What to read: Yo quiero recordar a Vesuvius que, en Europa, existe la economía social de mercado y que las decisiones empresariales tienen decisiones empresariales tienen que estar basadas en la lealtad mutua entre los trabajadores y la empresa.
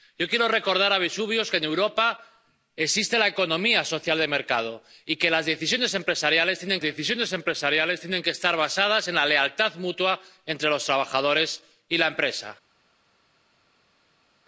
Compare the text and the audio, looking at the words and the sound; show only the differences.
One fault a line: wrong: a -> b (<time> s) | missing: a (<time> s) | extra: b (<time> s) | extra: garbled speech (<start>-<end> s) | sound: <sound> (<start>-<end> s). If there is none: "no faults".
no faults